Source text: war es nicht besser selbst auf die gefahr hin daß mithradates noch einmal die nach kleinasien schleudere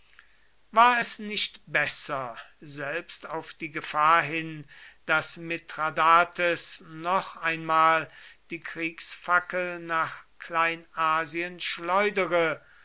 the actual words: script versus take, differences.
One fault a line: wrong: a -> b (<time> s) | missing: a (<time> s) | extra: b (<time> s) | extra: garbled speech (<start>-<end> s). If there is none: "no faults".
extra: kriegsfackel (8.6 s)